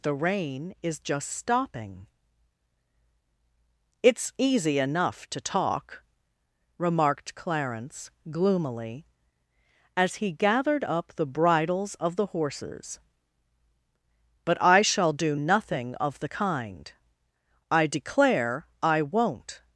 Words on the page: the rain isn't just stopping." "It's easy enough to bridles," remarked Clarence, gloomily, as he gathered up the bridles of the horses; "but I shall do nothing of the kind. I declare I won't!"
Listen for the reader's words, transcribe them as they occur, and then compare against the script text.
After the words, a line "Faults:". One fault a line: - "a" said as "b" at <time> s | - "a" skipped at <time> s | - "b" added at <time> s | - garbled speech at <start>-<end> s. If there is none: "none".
the rain is just stopping." "It's easy enough to talk," remarked Clarence, gloomily, as he gathered up the bridles of the horses; "but I shall do nothing of the kind. I declare I won't!"
Faults:
- "isn't" said as "is" at 0.8 s
- "bridles" said as "talk" at 5.4 s